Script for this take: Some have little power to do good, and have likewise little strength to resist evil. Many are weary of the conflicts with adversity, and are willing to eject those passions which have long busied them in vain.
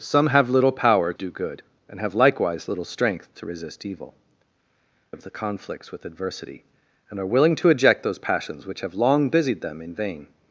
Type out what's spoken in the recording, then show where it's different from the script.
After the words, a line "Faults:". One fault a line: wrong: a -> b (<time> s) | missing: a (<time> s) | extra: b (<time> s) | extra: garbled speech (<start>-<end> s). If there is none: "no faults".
Some have little power do good, and have likewise little strength to resist evil. Of the conflicts with adversity, and are willing to eject those passions which have long busied them in vain.
Faults:
missing: to (1.1 s)
missing: Many are weary (4.1 s)